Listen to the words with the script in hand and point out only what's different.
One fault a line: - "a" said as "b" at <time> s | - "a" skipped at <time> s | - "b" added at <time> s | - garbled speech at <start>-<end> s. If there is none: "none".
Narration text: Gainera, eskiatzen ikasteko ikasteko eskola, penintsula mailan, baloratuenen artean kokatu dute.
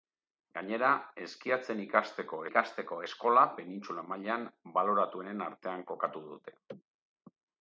none